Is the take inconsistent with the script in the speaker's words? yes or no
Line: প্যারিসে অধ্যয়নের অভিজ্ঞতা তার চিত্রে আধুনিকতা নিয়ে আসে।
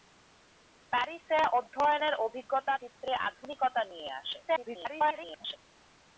yes